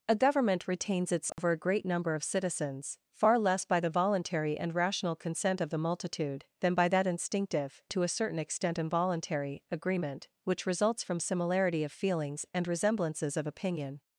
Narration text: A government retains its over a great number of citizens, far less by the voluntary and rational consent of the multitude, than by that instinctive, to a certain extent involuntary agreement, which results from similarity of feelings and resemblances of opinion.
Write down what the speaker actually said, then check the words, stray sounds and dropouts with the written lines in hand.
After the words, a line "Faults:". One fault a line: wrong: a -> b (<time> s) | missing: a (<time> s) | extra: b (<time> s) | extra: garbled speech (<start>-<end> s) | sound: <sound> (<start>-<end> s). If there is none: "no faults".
A government retains its over a great number of citizens, far less by the voluntary and rational consent of the multitude, than by that instinctive, to a certain extent involuntary agreement, which results from similarity of feelings and resemblances of opinion.
Faults:
sound: dropout (1.3-1.4 s)